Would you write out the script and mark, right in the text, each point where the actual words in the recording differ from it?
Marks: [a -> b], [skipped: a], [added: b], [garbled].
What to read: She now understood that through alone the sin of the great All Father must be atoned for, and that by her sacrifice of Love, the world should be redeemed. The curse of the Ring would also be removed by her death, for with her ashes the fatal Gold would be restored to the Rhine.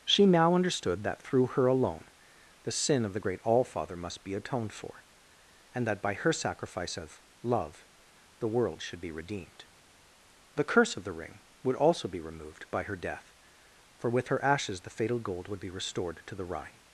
She now understood that through [added: her] alone the sin of the great All Father must be atoned for, and that by her sacrifice of Love, the world should be redeemed. The curse of the Ring would also be removed by her death, for with her ashes the fatal Gold would be restored to the Rhine.